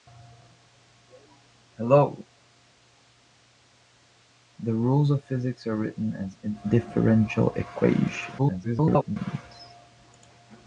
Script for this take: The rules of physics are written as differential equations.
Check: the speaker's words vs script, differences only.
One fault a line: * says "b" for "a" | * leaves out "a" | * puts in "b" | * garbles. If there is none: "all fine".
* garbles